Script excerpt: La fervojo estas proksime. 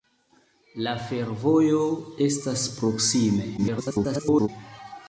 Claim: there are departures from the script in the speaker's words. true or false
true